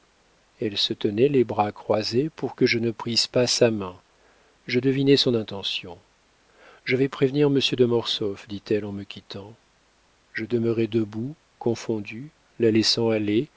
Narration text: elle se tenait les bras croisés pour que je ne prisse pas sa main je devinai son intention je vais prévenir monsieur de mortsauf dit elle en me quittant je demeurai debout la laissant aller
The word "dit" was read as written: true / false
true